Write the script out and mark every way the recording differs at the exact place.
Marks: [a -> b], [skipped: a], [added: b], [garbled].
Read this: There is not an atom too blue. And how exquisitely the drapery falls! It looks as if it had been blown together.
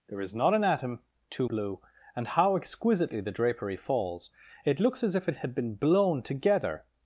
There is not an atom too blue. And how exquisitely the drapery falls! It looks as if it had been blown together.